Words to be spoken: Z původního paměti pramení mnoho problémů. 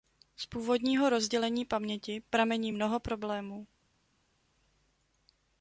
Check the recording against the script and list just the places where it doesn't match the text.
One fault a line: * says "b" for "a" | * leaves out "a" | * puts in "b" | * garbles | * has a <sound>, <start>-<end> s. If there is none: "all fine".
* puts in "rozdělení"